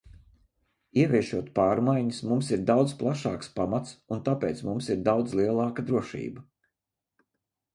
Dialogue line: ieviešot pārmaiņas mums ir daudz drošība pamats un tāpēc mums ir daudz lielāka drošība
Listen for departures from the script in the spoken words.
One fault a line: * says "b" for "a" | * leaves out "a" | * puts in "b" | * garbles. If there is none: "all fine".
* says "plašāks" for "drošība"